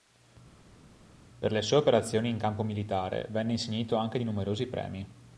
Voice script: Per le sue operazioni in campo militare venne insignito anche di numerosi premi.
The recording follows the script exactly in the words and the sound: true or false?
true